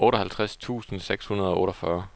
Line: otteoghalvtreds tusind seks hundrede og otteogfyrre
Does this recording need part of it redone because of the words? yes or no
no